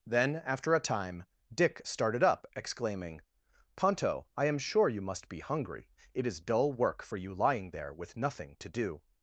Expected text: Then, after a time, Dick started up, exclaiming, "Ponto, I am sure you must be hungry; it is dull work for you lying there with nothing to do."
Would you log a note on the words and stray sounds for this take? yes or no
no